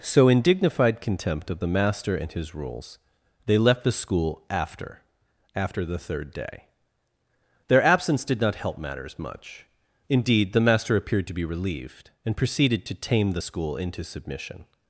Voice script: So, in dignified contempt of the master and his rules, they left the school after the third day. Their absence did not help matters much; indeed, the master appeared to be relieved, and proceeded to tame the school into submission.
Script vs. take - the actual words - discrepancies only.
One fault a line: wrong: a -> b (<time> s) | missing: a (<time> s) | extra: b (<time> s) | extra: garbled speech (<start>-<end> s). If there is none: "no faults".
extra: after (5.5 s)